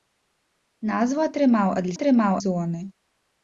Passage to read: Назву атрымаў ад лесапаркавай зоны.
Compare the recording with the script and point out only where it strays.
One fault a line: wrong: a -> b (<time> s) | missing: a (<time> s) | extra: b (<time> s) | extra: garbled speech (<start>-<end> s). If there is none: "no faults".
wrong: лесапаркавай -> атрымаў (1.9 s)